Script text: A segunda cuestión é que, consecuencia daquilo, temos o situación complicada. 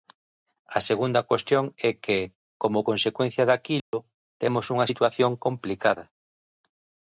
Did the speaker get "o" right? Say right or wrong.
wrong